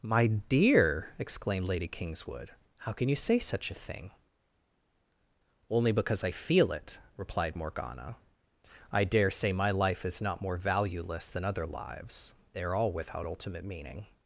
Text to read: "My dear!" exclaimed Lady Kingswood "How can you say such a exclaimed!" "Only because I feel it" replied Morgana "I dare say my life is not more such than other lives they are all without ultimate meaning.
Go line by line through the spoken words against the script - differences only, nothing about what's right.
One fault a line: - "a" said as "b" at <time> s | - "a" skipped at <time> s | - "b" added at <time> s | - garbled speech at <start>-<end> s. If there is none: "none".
- "exclaimed" said as "thing" at 3.7 s
- "such" said as "valueless" at 10.6 s